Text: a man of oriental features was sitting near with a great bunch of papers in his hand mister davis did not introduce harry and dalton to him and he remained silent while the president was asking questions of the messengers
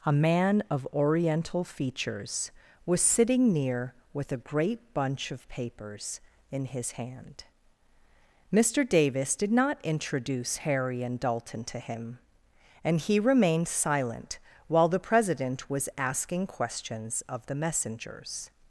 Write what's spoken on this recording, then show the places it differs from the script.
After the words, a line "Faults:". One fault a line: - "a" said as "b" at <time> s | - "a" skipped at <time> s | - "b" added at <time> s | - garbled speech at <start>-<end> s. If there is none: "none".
a man of oriental features was sitting near with a great bunch of papers in his hand mister davis did not introduce harry and dalton to him and he remained silent while the president was asking questions of the messengers
Faults:
none